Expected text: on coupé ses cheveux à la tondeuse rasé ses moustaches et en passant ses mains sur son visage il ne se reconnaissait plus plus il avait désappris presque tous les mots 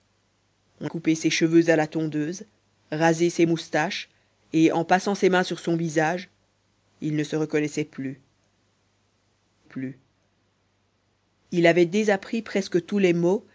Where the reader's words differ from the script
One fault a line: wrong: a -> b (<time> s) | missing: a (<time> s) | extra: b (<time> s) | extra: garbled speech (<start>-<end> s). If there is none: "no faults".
no faults